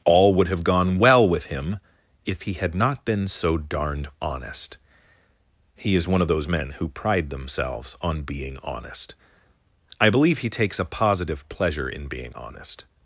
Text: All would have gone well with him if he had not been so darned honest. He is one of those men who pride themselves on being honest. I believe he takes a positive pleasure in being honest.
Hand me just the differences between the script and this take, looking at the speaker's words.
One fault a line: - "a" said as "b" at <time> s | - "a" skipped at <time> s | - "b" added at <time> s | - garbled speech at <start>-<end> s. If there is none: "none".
none